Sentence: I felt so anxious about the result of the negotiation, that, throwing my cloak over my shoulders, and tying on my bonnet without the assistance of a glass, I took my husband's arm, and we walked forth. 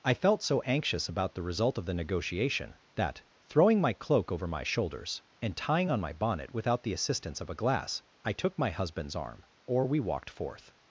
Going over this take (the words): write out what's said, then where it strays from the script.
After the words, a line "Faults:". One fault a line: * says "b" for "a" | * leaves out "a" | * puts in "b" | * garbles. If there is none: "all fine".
I felt so anxious about the result of the negotiation, that, throwing my cloak over my shoulders, and tying on my bonnet without the assistance of a glass, I took my husband's arm, or we walked forth.
Faults:
* says "or" for "and"